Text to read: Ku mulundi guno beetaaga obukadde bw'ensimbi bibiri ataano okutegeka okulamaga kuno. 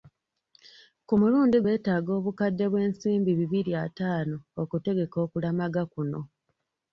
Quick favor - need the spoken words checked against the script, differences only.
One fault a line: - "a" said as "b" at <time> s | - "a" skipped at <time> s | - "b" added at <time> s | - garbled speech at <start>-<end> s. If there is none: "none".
- "guno" skipped at 1.6 s